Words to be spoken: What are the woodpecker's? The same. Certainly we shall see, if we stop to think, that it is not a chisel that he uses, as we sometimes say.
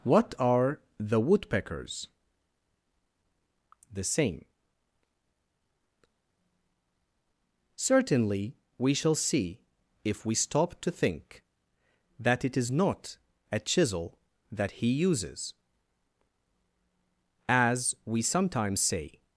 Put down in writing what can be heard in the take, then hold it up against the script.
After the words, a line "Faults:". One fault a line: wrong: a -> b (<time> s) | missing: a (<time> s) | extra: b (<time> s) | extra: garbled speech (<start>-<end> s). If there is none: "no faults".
What are the woodpecker's? The same. Certainly we shall see, if we stop to think, that it is not a chisel that he uses, as we sometimes say.
Faults:
no faults